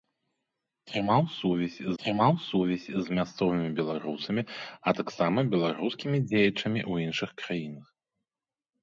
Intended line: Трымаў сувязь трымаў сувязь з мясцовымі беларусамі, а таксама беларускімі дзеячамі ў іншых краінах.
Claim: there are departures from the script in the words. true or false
false